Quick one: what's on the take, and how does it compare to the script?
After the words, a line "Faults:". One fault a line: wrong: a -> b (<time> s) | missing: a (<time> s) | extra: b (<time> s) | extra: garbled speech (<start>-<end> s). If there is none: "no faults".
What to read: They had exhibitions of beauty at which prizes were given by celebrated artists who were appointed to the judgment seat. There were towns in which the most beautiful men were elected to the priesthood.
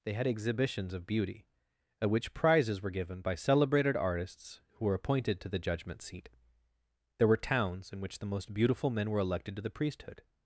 They had exhibitions of beauty at which prizes were given by celebrated artists who were appointed to the judgment seat. There were towns in which the most beautiful men were elected to the priesthood.
Faults:
no faults